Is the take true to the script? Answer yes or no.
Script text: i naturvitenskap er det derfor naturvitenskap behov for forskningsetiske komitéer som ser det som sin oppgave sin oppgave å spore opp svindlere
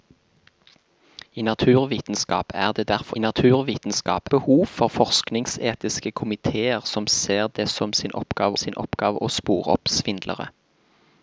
yes